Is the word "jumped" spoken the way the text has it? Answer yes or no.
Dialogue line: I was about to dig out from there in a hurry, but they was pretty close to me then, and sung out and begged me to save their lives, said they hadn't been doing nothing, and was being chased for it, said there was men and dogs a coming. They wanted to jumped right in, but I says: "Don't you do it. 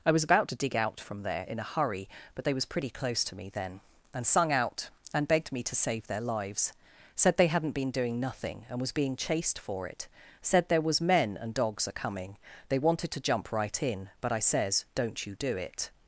no